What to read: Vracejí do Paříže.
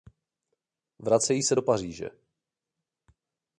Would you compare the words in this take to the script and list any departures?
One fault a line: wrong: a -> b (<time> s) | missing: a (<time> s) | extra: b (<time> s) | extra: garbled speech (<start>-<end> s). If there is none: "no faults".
extra: se (1.4 s)